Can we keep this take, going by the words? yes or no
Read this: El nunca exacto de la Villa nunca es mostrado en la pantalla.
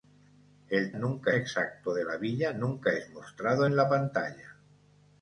yes